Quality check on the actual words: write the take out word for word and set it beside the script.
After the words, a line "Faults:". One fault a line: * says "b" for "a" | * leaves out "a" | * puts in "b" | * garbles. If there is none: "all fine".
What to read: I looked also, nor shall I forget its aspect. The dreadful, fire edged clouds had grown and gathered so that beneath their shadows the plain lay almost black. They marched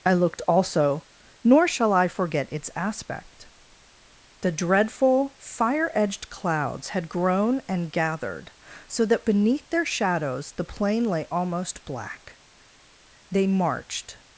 I looked also, nor shall I forget its aspect. The dreadful, fire edged clouds had grown and gathered so that beneath their shadows the plain lay almost black. They marched
Faults:
all fine